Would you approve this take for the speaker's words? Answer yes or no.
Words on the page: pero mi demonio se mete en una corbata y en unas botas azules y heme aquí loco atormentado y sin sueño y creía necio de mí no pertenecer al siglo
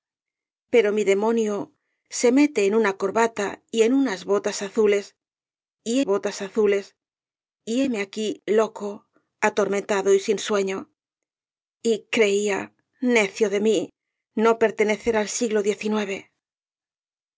no